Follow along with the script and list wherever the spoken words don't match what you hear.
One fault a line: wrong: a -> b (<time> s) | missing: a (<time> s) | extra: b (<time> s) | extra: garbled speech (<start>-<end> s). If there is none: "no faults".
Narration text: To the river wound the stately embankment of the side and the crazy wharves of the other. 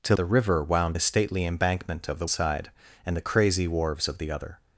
no faults